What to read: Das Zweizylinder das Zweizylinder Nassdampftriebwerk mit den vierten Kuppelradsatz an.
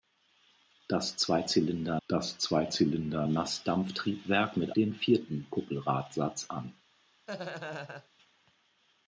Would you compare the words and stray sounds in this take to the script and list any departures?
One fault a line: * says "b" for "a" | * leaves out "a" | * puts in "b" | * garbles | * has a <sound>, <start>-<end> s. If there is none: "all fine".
* has a laugh, 7.3-8.1 s